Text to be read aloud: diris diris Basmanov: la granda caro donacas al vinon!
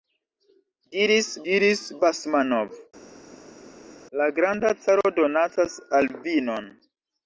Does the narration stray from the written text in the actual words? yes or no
no